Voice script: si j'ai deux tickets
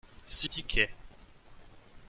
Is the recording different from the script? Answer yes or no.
yes